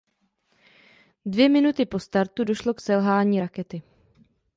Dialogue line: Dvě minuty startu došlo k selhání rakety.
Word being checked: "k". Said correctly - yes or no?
yes